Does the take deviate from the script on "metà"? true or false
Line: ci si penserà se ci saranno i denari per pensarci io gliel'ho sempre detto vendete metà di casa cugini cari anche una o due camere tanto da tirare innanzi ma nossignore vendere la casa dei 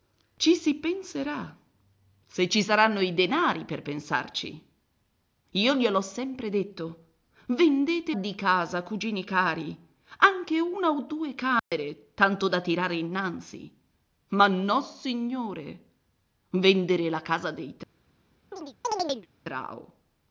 true